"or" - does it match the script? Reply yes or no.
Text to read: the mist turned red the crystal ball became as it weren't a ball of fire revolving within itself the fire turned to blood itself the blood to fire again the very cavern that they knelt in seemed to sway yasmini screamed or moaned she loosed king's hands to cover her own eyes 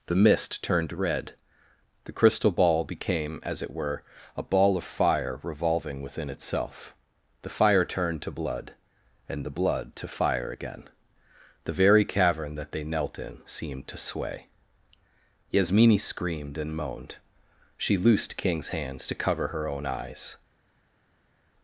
no